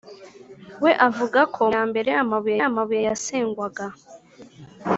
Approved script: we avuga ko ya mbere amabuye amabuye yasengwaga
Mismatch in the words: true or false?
false